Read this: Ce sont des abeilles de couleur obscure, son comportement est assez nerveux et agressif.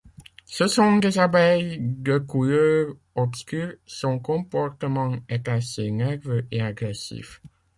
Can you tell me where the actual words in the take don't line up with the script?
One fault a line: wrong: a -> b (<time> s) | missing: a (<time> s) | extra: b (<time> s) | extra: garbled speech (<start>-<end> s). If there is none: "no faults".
no faults